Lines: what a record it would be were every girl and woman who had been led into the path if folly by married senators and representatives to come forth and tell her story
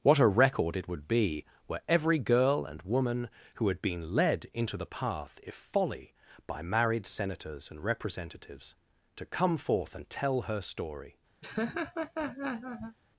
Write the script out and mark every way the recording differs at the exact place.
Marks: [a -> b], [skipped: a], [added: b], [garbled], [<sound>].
what a record it would be were every girl and woman who had been led into the path if folly by married senators and representatives to come forth and tell her story [laugh]